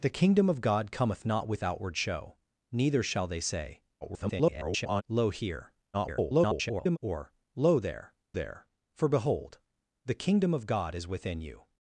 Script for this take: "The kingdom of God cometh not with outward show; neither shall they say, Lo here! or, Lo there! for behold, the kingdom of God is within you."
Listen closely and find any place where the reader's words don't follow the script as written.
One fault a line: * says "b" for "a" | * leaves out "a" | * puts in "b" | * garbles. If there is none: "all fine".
* garbles
* garbles
* puts in "there"